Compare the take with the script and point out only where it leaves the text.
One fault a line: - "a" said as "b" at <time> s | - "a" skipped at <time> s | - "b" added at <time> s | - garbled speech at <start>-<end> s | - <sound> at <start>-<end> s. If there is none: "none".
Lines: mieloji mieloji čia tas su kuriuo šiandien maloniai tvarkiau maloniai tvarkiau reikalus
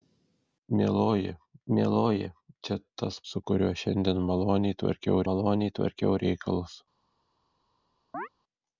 - chirp at 8.1-8.3 s